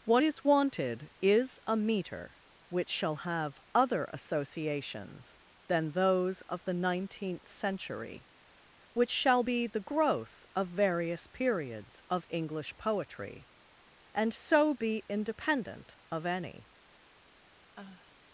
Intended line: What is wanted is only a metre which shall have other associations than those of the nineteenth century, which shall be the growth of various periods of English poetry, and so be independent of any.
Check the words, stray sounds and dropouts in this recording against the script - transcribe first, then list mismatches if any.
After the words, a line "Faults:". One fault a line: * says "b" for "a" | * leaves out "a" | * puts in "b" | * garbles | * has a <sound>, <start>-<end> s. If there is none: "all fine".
What is wanted is a metre which shall have other associations than those of the nineteenth century, which shall be the growth of various periods of English poetry, and so be independent of any.
Faults:
* leaves out "only"
* has a sigh, 17.7-18.1 s